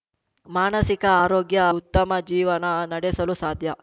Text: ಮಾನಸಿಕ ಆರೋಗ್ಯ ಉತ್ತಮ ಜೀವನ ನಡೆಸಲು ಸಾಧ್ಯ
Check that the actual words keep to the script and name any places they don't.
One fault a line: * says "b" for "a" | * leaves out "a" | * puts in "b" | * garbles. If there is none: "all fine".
all fine